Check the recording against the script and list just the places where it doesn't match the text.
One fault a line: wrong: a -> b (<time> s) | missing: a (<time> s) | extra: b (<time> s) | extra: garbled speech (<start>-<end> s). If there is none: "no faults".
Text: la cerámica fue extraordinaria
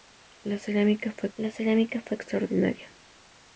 extra: la cerámica fue (1.3 s)